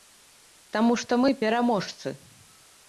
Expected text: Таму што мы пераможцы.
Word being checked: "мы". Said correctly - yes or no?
yes